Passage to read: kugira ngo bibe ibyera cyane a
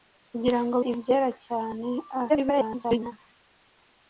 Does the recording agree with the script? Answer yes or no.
no